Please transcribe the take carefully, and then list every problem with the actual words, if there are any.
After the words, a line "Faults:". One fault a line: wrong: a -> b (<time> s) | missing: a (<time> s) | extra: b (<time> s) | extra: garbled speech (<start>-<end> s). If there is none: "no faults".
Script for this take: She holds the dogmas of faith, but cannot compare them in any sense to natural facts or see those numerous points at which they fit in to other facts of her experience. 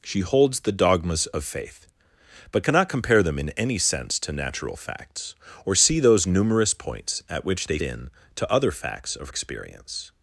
She holds the dogmas of faith, but cannot compare them in any sense to natural facts or see those numerous points at which they in to other facts of experience.
Faults:
missing: fit (7.8 s)
missing: her (9.3 s)